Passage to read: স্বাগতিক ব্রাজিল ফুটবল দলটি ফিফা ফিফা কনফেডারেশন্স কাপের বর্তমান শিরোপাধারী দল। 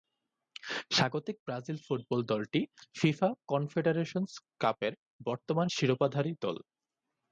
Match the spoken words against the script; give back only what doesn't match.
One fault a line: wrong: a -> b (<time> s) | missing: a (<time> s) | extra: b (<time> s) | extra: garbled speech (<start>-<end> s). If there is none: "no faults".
missing: ফিফা (3.3 s)